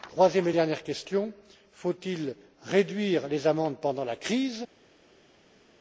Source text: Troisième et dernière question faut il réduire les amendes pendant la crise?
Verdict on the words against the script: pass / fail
pass